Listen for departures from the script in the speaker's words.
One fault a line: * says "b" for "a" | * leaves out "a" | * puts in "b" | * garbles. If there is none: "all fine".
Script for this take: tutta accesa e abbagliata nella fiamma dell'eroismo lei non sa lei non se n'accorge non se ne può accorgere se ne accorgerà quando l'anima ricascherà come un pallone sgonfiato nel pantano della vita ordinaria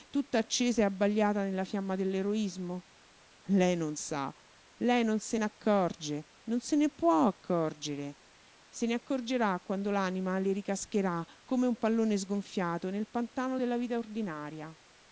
* puts in "le"